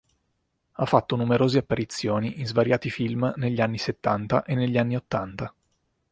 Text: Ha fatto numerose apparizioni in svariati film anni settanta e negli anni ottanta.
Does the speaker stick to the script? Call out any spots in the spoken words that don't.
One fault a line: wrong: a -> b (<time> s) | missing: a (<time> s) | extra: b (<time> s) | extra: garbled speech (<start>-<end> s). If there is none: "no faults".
extra: negli (3.3 s)